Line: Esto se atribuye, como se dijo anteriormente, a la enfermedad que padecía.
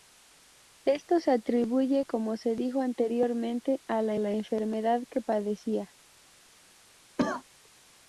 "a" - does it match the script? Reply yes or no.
yes